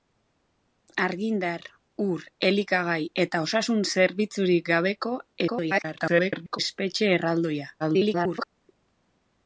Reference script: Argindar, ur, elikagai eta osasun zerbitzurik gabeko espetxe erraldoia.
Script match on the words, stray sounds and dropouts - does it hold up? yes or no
no